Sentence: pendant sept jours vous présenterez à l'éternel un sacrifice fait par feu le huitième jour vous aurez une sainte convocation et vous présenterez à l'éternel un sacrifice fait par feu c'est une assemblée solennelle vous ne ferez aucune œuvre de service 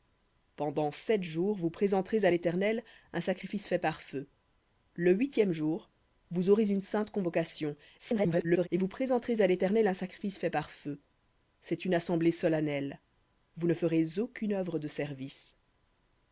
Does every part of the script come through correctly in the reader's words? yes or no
no